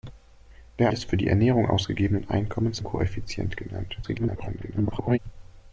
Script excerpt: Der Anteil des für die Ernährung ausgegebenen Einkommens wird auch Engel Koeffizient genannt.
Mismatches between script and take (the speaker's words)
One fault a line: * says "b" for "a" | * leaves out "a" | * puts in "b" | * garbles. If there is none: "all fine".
* leaves out "Anteil"
* leaves out "wird auch Engel"
* garbles